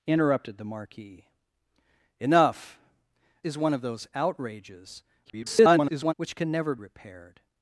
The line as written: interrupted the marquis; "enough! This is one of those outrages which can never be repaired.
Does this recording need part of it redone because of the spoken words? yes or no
yes